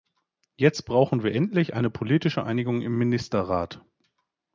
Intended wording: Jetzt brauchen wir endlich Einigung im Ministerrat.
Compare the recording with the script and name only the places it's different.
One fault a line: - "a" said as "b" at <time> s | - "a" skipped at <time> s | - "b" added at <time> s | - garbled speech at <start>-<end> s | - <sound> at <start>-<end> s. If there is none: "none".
- "eine politische" added at 1.7 s